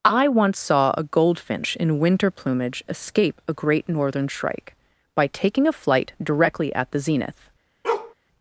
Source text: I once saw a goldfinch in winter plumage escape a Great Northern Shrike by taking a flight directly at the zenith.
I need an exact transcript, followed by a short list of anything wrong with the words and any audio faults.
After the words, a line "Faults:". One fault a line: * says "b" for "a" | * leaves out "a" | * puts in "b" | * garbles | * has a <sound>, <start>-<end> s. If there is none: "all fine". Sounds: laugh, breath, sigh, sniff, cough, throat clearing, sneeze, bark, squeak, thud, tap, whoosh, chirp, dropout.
I once saw a goldfinch in winter plumage escape a Great Northern Shrike by taking a flight directly at the zenith.
Faults:
* has a bark, 7.8-8.1 s